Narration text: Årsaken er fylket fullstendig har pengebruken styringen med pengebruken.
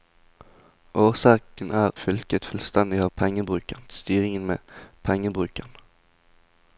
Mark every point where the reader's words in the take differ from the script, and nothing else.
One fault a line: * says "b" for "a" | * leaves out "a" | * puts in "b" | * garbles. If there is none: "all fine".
all fine